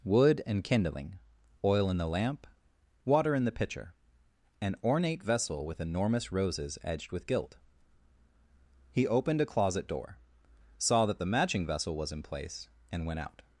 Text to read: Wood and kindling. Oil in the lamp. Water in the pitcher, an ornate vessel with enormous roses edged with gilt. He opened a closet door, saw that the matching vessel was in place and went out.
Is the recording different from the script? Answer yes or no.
no